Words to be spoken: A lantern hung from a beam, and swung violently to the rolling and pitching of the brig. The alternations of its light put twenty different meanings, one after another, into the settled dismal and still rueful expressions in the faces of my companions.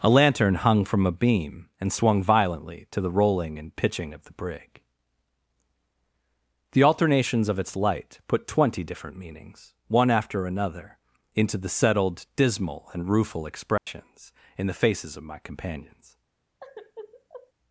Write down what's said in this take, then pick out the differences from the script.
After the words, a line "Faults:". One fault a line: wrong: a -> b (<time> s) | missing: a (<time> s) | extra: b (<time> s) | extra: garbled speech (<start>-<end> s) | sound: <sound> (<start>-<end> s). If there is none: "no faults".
A lantern hung from a beam, and swung violently to the rolling and pitching of the brig. The alternations of its light put twenty different meanings, one after another, into the settled dismal and rueful expressions in the faces of my companions.
Faults:
missing: still (13.1 s)
sound: dropout (13.8-13.9 s)
sound: sigh (16.6-17.5 s)